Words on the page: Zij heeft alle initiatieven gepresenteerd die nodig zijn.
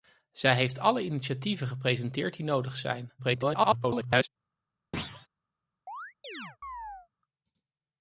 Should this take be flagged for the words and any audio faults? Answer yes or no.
yes